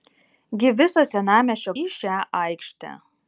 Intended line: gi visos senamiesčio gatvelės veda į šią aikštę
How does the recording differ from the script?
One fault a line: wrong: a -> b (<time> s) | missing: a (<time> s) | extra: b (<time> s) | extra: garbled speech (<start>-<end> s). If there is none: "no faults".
missing: gatvelės veda (1.8 s)